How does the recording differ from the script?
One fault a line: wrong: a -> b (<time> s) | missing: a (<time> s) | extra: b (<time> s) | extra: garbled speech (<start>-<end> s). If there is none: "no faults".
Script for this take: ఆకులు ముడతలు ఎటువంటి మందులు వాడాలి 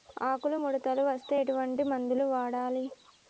extra: వస్తే (1.1 s)